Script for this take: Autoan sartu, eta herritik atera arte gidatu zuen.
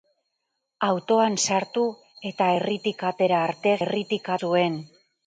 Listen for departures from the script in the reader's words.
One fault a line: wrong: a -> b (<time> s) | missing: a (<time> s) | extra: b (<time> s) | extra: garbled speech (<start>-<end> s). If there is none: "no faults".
wrong: gidatu -> herritik (3.8 s)